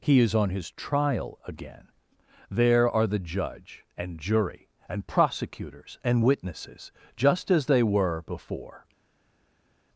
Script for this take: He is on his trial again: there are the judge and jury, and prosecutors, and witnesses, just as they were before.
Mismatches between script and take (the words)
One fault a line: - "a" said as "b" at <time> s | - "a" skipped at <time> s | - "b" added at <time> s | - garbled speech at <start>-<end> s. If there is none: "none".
none